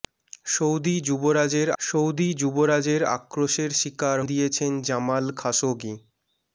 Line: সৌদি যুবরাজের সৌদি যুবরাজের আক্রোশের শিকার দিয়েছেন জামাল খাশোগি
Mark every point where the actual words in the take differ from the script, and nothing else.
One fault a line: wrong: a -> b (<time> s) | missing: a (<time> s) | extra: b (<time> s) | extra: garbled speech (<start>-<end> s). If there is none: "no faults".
no faults